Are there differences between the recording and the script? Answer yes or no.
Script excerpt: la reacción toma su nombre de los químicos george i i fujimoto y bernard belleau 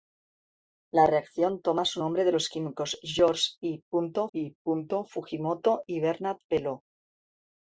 no